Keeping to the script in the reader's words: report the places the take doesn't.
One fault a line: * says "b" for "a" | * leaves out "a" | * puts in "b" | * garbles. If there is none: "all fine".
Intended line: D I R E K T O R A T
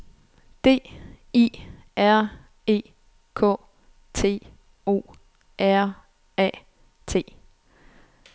all fine